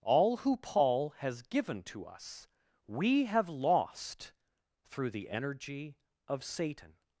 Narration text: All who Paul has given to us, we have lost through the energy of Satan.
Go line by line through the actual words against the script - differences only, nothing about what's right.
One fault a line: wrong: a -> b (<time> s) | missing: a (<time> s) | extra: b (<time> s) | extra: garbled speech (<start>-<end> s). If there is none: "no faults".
no faults